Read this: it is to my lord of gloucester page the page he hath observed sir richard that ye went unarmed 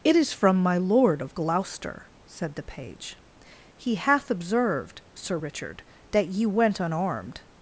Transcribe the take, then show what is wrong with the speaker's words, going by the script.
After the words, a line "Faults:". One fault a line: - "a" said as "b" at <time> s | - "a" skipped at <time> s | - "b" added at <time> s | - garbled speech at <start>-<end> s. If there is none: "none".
it is from my lord of gloucester said the page he hath observed sir richard that ye went unarmed
Faults:
- "to" said as "from" at 0.3 s
- "page" said as "said" at 2.2 s